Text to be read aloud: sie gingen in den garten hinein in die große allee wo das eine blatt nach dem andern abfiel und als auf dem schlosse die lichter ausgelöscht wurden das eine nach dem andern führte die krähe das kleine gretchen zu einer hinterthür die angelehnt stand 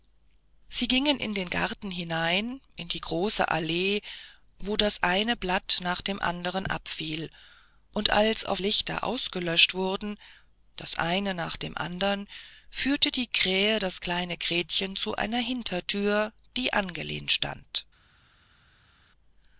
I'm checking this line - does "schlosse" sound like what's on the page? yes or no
no